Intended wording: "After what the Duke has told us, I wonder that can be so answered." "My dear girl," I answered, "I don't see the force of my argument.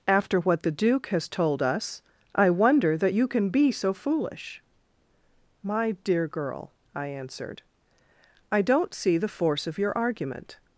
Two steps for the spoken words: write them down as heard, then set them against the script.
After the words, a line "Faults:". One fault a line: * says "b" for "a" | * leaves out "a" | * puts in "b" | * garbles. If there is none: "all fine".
"After what the Duke has told us, I wonder that you can be so foolish." "My dear girl," I answered, "I don't see the force of your argument.
Faults:
* puts in "you"
* says "foolish" for "answered"
* says "your" for "my"